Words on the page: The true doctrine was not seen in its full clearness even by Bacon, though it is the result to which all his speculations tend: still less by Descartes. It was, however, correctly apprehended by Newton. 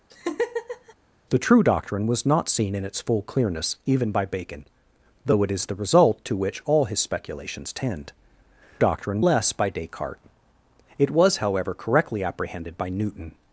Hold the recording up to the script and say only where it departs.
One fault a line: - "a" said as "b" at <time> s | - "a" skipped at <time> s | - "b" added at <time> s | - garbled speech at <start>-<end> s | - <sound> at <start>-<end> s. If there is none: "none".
- laugh at 0.1-0.9 s
- "still" said as "doctrine" at 8.8 s